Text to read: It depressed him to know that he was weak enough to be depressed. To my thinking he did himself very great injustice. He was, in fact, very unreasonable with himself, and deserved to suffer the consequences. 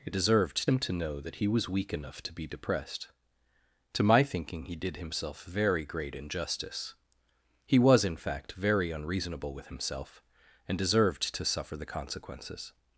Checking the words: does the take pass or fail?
fail